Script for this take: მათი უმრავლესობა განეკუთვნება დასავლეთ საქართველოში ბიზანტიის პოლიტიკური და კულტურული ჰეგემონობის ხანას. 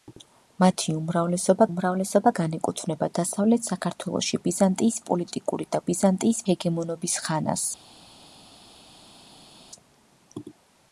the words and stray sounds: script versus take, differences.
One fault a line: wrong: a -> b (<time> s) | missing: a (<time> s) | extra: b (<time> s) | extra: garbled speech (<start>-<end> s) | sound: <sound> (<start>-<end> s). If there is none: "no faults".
extra: უმრავლესობა (1.7 s)
wrong: კულტურული -> ბიზანტიის (5.9 s)